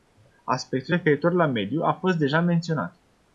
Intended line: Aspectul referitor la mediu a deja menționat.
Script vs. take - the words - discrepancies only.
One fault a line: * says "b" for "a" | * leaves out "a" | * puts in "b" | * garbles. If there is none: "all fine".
* puts in "fost"